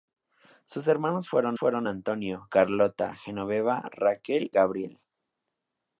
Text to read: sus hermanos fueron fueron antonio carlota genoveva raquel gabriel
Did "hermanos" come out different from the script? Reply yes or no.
no